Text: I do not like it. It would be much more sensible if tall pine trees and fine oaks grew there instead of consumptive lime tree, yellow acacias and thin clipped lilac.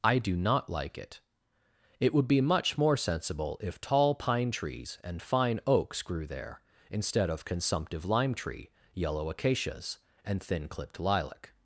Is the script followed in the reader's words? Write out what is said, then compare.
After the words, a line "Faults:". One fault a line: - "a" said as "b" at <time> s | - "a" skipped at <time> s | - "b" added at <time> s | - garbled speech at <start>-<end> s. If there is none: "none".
I do not like it. It would be much more sensible if tall pine trees and fine oaks grew there instead of consumptive lime tree, yellow acacias and thin clipped lilac.
Faults:
none